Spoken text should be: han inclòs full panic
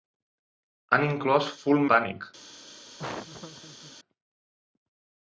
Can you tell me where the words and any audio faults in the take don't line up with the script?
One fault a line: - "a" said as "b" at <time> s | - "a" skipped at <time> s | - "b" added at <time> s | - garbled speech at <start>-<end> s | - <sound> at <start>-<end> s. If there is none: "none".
- laugh at 3.0-3.9 s